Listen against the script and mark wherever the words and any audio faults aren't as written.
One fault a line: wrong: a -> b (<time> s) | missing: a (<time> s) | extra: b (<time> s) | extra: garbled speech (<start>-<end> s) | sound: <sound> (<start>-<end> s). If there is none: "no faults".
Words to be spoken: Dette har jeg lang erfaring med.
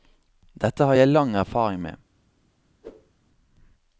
sound: whoosh (2.8-3.1 s)